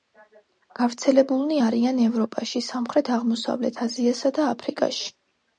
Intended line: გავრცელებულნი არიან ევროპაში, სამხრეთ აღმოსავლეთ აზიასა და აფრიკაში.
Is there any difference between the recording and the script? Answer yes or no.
no